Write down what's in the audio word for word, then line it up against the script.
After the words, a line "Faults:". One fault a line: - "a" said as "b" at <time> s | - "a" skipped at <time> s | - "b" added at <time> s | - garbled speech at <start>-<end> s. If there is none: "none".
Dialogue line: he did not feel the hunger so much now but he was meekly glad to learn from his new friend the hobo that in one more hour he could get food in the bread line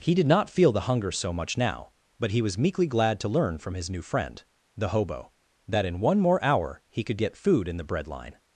he did not feel the hunger so much now but he was meekly glad to learn from his new friend the hobo that in one more hour he could get food in the bread line
Faults:
none